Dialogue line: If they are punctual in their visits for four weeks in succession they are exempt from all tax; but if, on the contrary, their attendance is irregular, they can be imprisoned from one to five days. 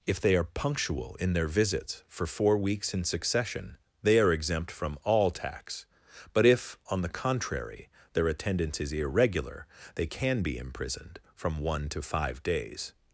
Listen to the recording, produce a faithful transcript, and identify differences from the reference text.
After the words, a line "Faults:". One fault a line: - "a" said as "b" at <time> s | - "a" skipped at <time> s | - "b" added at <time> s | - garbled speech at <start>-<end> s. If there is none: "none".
If they are punctual in their visits for four weeks in succession they are exempt from all tax; but if, on the contrary, their attendance is irregular, they can be imprisoned from one to five days.
Faults:
none